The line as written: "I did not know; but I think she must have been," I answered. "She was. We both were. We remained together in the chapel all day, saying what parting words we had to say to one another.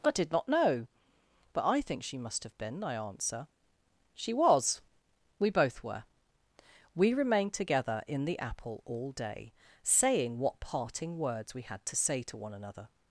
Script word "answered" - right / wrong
wrong